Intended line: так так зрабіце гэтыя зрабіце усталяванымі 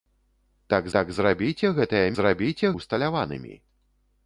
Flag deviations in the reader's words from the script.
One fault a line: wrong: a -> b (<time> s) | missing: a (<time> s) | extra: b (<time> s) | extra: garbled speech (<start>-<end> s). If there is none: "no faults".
no faults